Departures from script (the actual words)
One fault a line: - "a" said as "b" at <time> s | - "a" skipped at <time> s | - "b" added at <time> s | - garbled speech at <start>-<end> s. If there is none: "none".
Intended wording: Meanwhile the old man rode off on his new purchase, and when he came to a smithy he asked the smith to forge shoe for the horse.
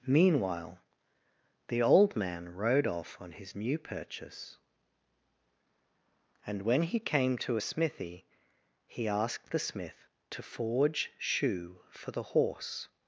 none